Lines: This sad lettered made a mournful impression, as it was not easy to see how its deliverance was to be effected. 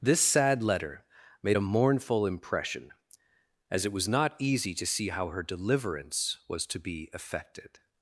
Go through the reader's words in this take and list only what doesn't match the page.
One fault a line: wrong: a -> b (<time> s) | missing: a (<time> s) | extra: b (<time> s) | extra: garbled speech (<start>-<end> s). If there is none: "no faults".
wrong: lettered -> letter (0.6 s)
wrong: its -> her (5.3 s)